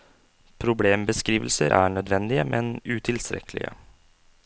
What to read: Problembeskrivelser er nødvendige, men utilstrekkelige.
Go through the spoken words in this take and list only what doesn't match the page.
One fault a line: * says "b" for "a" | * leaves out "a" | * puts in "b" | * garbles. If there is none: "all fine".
all fine